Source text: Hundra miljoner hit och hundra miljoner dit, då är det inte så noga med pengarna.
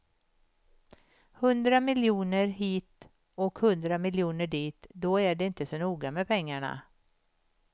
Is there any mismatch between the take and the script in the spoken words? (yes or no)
no